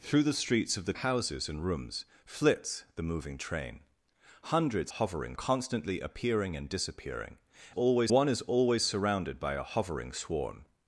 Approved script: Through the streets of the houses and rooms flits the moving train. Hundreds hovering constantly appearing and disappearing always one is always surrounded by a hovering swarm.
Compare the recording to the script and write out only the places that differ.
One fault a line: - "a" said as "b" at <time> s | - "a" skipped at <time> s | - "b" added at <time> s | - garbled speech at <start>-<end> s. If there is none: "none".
none